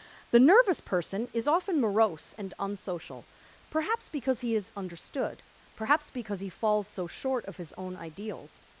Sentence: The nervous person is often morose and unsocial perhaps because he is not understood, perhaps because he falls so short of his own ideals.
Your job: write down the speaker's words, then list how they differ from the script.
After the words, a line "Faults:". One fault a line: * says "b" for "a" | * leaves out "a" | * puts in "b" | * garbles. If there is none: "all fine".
The nervous person is often morose and unsocial perhaps because he is understood, perhaps because he falls so short of his own ideals.
Faults:
* leaves out "not"